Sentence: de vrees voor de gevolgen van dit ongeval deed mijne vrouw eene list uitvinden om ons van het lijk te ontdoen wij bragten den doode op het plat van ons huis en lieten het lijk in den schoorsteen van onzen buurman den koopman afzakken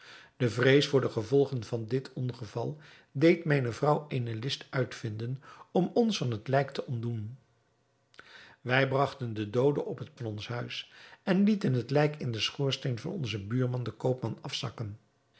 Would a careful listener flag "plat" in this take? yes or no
yes